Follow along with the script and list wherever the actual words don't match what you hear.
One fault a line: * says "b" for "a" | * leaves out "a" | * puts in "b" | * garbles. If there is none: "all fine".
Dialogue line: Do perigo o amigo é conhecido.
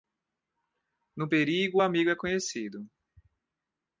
* says "No" for "Do"